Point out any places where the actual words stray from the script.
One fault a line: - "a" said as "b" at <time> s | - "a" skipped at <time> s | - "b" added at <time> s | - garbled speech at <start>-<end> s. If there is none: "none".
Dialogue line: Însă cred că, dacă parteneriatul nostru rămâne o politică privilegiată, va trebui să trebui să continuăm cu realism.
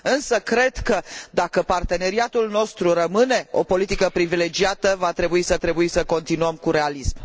none